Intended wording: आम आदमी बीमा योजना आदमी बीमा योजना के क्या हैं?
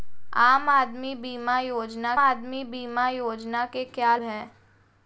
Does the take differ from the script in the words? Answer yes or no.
no